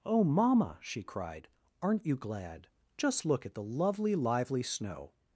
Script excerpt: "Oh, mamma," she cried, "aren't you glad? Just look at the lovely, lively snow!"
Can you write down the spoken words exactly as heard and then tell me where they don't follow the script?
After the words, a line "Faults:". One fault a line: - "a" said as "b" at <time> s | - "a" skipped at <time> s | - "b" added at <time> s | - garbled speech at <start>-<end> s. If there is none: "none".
"Oh, mamma," she cried, "aren't you glad? Just look at the lovely, lively snow!"
Faults:
none